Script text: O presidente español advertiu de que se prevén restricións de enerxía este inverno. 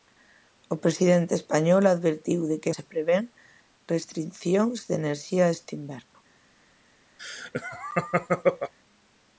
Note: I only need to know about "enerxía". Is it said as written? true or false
true